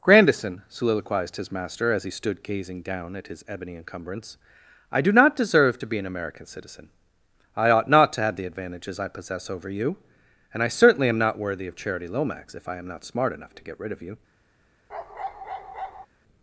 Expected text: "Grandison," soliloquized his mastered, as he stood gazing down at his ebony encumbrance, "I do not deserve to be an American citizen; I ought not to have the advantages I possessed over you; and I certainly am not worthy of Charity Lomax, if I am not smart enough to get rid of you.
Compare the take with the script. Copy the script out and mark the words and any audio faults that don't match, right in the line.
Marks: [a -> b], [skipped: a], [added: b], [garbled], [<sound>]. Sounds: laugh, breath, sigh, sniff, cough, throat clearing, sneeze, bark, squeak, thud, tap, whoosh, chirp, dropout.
"Grandison," soliloquized his [mastered, -> master] as he stood gazing down at his ebony encumbrance, "I do not deserve to be an American citizen; I ought not to have the advantages I [possessed -> possess] over you; and I certainly am not worthy of Charity Lomax, if I am not smart enough to get rid of you. [bark]